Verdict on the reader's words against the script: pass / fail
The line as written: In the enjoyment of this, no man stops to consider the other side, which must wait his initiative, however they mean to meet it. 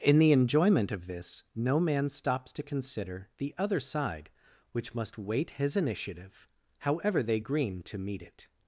fail